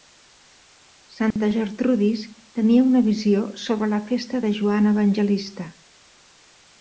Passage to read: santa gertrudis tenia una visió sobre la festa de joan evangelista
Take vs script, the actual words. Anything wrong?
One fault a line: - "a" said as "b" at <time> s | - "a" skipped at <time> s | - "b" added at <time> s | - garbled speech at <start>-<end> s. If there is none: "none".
none